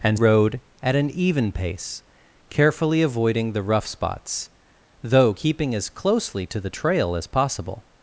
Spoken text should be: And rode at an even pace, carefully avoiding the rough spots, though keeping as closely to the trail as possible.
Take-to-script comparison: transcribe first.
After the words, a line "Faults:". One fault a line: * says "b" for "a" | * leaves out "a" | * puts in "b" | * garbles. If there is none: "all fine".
And rode at an even pace, carefully avoiding the rough spots, though keeping as closely to the trail as possible.
Faults:
all fine